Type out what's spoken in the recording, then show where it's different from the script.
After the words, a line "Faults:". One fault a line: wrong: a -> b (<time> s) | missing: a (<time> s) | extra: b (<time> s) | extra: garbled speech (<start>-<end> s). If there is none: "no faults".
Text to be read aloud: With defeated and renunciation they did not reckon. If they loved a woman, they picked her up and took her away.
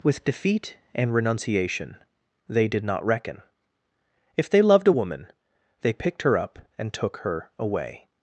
With defeat and renunciation they did not reckon. If they loved a woman, they picked her up and took her away.
Faults:
wrong: defeated -> defeat (0.2 s)